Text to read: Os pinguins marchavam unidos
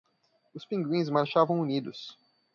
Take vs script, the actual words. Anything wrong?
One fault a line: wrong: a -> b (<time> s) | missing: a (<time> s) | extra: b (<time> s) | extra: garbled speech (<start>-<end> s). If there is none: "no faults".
no faults